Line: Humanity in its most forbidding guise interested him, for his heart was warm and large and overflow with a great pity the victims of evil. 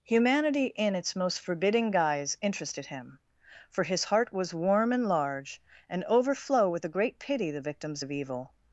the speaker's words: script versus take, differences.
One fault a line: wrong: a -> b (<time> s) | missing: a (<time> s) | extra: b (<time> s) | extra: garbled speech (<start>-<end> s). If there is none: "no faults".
no faults